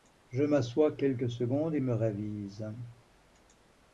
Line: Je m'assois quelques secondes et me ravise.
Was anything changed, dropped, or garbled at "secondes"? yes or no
no